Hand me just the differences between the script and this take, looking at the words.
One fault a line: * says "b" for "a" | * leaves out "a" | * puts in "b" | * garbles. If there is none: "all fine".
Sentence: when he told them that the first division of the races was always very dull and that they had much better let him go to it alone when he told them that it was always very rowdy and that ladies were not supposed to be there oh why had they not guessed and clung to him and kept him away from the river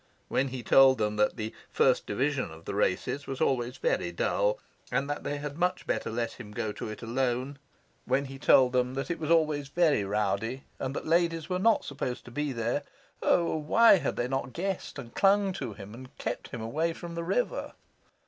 all fine